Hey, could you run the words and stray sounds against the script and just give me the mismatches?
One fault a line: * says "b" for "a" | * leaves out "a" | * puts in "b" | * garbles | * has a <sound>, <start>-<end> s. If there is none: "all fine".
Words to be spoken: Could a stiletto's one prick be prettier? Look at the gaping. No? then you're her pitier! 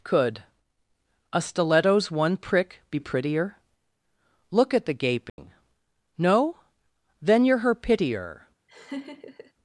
* has a dropout, 5.3-5.4 s
* has a laugh, 8.7-9.5 s